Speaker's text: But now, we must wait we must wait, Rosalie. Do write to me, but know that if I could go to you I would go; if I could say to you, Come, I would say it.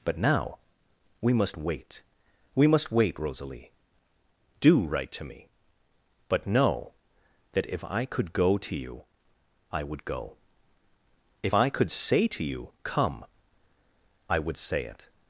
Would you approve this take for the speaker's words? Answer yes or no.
yes